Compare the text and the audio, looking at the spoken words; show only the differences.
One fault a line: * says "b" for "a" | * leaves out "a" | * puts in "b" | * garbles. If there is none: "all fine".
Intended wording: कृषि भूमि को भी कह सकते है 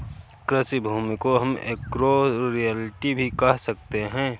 * puts in "हम एग्रो रियल्टी"